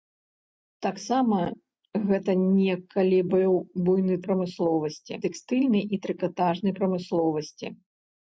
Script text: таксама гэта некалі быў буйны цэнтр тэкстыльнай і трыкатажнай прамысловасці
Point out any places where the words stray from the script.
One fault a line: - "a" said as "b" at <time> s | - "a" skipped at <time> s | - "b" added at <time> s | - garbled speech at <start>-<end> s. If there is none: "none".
- "цэнтр" said as "прамысловасці" at 4.3 s